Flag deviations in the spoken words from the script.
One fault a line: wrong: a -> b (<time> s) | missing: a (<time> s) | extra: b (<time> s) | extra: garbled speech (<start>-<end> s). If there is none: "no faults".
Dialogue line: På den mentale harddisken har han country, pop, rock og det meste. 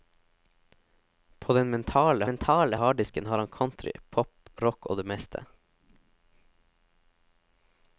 extra: mentale (2.2 s)